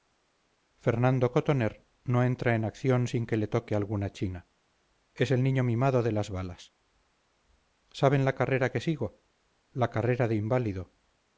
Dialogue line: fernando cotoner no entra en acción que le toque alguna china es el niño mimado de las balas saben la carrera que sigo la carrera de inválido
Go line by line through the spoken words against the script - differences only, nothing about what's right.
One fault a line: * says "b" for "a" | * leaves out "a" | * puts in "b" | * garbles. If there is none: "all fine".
* puts in "sin"